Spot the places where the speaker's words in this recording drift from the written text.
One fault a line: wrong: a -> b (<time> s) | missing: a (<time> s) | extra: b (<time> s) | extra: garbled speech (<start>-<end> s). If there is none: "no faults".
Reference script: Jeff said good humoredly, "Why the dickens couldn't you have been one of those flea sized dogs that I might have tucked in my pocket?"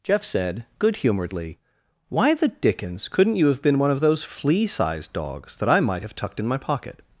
no faults